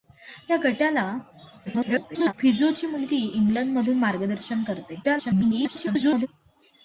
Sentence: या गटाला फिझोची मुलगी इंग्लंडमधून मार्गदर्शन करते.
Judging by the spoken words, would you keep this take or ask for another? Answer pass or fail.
fail